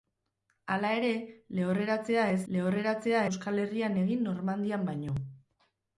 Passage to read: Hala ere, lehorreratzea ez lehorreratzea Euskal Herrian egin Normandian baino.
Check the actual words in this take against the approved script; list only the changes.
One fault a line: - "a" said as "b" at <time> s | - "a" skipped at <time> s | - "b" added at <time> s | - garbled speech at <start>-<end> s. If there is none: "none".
none